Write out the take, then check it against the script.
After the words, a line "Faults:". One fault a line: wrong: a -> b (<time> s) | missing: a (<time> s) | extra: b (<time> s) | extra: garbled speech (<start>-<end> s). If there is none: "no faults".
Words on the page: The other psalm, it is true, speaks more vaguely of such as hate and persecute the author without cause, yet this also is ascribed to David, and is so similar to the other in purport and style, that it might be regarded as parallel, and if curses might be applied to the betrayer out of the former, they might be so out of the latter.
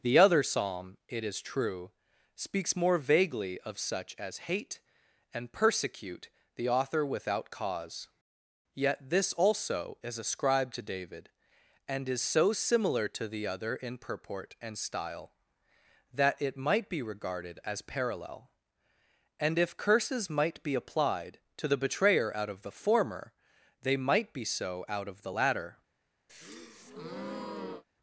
The other psalm, it is true, speaks more vaguely of such as hate and persecute the author without cause, yet this also is ascribed to David, and is so similar to the other in purport and style, that it might be regarded as parallel, and if curses might be applied to the betrayer out of the former, they might be so out of the latter.
Faults:
no faults